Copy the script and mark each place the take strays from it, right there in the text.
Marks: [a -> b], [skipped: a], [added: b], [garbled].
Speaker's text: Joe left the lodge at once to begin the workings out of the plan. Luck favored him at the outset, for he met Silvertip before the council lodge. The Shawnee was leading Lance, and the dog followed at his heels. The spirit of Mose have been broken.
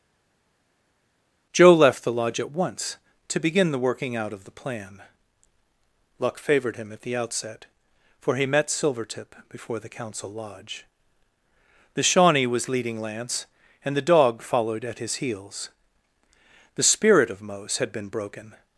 Joe left the lodge at once to begin the [workings -> working] out of the plan. Luck favored him at the outset, for he met Silvertip before the council lodge. The Shawnee was leading Lance, and the dog followed at his heels. The spirit of Mose [have -> had] been broken.